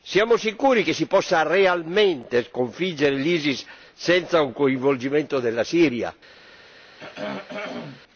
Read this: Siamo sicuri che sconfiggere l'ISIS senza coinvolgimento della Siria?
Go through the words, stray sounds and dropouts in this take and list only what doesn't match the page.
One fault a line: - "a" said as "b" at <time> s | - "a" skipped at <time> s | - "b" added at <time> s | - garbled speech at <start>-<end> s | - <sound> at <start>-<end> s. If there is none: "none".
- "si possa realmente" added at 0.9 s
- "un" added at 4.4 s
- throat clearing at 7.0-8.0 s